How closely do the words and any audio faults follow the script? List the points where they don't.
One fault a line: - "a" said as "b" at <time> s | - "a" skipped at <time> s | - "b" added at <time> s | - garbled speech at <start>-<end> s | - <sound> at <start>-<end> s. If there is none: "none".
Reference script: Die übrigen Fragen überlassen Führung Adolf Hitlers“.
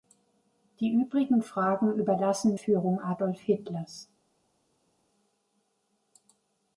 none